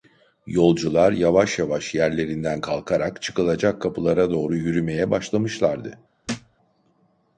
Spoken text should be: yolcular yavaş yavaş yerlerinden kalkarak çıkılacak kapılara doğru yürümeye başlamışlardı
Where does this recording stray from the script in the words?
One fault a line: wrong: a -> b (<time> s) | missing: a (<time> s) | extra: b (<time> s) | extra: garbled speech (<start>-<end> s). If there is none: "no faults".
no faults